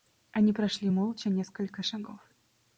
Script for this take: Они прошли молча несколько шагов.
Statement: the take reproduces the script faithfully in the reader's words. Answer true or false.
true